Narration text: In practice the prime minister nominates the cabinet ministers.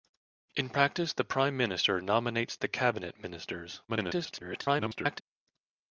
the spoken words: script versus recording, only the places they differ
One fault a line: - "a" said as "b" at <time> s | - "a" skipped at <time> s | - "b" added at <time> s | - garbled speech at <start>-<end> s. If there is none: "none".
- garbled speech at 3.9-5.2 s